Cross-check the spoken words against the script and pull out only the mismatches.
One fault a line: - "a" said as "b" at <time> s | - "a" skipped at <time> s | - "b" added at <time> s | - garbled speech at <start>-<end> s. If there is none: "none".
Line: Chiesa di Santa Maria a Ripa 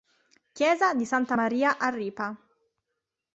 none